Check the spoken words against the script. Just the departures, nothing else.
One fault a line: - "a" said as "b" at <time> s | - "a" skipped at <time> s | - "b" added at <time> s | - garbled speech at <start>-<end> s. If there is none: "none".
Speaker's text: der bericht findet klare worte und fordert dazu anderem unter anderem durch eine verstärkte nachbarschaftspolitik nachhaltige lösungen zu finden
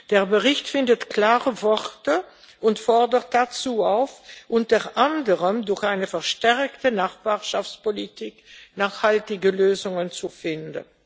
- "anderem" said as "auf" at 3.8 s